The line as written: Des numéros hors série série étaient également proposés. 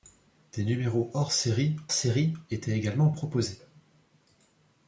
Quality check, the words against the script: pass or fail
pass